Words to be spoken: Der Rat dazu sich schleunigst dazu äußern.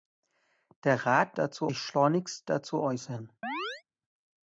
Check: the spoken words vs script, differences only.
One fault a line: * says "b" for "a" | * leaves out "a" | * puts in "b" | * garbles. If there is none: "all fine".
all fine